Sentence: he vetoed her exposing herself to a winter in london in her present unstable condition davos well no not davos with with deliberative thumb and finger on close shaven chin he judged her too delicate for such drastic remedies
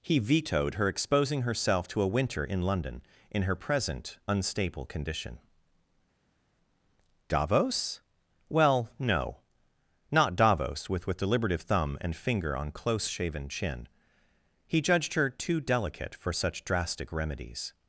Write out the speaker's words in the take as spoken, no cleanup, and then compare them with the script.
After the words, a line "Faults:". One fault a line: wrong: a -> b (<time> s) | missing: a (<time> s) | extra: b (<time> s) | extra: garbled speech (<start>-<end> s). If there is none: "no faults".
he vetoed her exposing herself to a winter in london in her present unstable condition davos well no not davos with with deliberative thumb and finger on close shaven chin he judged her too delicate for such drastic remedies
Faults:
no faults